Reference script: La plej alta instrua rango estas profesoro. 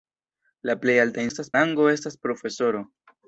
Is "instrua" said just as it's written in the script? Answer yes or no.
no